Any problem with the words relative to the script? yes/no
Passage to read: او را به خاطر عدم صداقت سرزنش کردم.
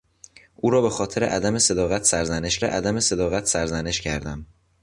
yes